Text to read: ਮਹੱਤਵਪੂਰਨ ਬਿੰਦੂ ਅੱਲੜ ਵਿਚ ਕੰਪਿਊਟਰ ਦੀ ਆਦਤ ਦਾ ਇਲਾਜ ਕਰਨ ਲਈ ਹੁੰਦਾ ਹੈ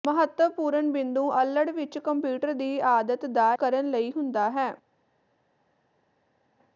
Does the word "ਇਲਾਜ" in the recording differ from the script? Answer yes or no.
yes